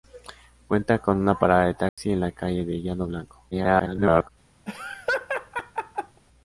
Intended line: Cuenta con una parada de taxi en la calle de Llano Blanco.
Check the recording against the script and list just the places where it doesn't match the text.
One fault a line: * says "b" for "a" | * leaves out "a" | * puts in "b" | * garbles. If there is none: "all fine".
* garbles